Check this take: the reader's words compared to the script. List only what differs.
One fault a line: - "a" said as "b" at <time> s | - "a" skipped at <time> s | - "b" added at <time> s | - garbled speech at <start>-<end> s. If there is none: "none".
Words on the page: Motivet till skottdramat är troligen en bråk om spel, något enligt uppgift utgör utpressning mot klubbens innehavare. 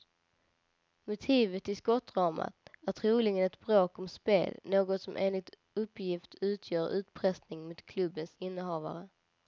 - "en" said as "ett" at 3.5 s
- "som" added at 5.0 s